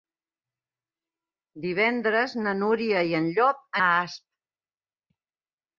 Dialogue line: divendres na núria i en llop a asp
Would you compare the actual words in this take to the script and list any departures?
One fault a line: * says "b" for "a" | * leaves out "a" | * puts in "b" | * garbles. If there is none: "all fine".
all fine